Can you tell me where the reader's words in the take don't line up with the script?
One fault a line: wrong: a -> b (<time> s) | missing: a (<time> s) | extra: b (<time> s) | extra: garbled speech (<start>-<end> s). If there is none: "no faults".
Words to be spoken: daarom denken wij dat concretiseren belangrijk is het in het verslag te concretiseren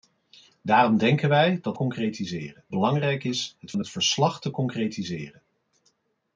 no faults